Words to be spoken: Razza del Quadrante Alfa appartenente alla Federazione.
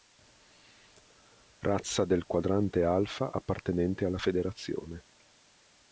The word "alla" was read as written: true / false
true